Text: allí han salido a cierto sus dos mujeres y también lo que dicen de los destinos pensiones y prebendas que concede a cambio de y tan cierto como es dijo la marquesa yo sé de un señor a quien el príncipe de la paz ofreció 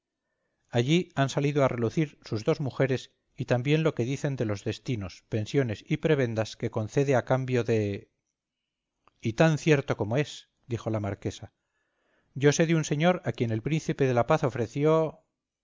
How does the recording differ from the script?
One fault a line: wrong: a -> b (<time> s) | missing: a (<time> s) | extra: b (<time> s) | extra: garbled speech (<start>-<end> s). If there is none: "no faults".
wrong: cierto -> relucir (1.7 s)